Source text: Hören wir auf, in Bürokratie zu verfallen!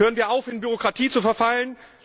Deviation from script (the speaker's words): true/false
false